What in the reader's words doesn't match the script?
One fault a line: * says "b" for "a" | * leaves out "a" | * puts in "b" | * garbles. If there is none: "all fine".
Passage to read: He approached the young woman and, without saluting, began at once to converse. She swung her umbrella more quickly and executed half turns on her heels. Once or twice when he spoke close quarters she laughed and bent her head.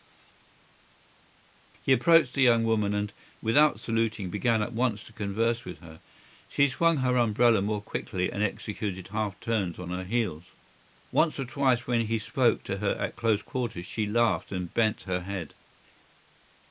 * puts in "with her"
* puts in "to her at"